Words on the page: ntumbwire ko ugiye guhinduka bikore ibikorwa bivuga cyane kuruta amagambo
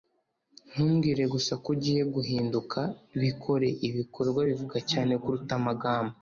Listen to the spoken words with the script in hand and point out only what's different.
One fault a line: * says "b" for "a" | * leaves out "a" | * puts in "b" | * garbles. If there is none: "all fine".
* puts in "gusa"